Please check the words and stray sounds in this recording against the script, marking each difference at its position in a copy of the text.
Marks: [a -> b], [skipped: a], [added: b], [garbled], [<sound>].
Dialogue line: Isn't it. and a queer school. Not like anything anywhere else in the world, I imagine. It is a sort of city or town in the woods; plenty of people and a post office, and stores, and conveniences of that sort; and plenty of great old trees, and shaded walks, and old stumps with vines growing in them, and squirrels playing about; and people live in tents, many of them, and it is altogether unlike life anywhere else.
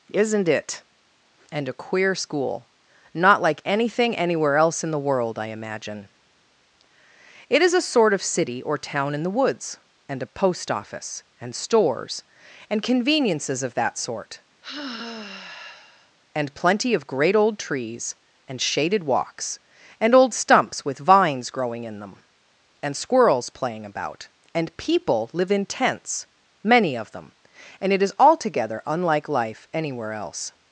Isn't it. and a queer school. Not like anything anywhere else in the world, I imagine. It is a sort of city or town in the woods; [skipped: plenty of people] and a post office, and stores, and conveniences of that sort; [sigh] and plenty of great old trees, and shaded walks, and old stumps with vines growing in them, and squirrels playing about; and people live in tents, many of them, and it is altogether unlike life anywhere else.